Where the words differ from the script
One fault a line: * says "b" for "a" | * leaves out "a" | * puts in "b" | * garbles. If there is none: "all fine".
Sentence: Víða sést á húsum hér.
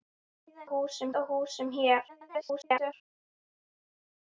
* says "húsum" for "sést"
* garbles